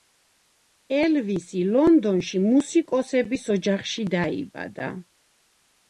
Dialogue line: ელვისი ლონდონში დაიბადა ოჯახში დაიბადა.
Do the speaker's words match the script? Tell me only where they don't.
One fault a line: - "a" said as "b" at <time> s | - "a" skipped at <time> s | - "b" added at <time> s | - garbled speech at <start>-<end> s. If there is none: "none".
- "დაიბადა" said as "მუსიკოსების" at 2.5 s